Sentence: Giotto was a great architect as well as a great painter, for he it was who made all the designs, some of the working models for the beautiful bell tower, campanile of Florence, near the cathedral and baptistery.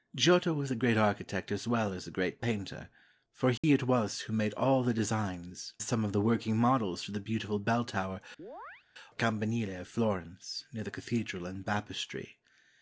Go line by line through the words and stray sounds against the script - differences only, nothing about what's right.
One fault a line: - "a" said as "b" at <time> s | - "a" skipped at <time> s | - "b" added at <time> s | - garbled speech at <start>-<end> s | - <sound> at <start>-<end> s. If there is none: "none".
- dropout at 3.6-3.6 s
- chirp at 8.4-8.9 s